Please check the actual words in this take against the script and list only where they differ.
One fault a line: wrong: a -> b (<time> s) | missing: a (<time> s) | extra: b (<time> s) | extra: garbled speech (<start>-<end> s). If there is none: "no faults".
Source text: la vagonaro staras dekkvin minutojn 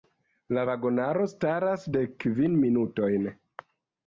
no faults